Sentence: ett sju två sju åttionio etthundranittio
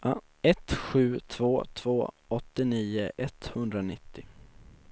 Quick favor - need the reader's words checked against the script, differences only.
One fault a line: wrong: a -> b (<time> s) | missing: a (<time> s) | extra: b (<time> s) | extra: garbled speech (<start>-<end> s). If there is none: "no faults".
wrong: sju -> två (1.7 s)